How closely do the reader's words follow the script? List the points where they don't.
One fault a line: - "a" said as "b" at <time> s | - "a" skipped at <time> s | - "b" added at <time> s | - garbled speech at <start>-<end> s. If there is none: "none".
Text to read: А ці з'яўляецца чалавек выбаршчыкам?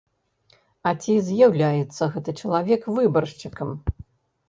- "гэты" added at 2.2 s